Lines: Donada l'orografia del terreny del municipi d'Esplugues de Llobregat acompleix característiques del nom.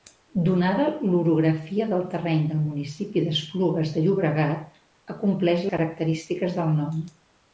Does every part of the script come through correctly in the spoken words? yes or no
yes